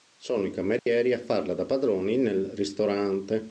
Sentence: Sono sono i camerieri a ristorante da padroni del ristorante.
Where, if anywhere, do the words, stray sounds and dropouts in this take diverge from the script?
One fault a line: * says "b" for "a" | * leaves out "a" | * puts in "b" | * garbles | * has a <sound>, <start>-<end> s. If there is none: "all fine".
* leaves out "sono"
* has a dropout, 0.8-0.9 s
* says "farla" for "ristorante"
* says "nel" for "del"